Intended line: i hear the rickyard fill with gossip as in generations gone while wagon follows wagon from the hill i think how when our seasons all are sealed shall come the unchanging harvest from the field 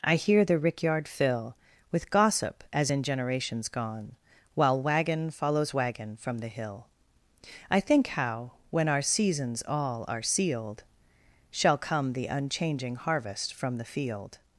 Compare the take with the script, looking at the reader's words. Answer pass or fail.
pass